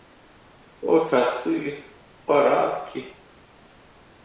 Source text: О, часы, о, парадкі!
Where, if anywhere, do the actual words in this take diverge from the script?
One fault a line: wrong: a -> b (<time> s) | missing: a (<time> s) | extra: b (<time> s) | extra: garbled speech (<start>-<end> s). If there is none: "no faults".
missing: о (1.8 s)